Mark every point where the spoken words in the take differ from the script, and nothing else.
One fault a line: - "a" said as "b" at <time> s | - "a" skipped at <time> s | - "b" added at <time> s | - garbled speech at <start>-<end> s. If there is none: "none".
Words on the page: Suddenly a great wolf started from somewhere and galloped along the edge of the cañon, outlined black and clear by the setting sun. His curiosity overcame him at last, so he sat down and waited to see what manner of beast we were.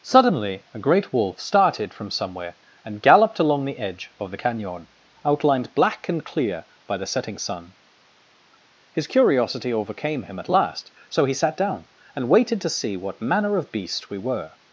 none